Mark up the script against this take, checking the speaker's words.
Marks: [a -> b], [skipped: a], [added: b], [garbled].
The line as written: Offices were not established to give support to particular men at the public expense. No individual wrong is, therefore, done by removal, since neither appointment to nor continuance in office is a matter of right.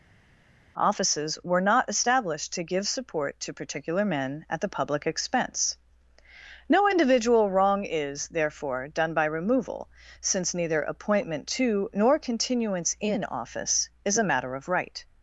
Offices were not established to give support to particular men at the public expense. No individual wrong is, therefore, done by removal, since neither appointment to nor continuance in office is a matter of right.